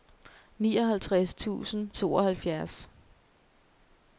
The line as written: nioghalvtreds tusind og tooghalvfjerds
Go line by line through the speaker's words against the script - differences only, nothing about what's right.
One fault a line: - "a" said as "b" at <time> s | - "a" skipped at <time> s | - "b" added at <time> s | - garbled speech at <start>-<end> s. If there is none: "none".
- "og" skipped at 1.9 s